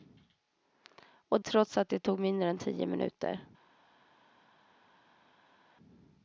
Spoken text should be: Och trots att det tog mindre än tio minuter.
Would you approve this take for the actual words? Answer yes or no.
yes